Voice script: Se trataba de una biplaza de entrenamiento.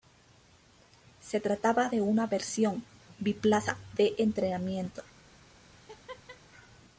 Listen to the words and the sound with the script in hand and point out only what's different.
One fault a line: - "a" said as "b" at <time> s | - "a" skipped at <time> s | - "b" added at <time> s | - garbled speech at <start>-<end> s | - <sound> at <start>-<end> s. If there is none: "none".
- "versión" added at 2.3 s
- laugh at 5.7-6.4 s